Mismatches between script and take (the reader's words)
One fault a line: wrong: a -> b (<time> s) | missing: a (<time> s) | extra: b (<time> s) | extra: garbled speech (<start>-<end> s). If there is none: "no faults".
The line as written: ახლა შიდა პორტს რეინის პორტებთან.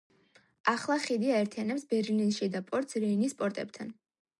extra: ხიდი აერთიანებს ბერლინის (1.0 s)